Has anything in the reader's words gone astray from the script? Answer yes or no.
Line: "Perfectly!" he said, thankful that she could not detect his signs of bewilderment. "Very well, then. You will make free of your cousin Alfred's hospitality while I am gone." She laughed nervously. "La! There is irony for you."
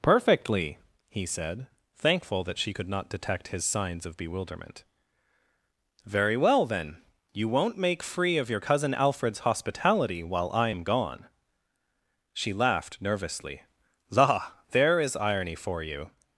yes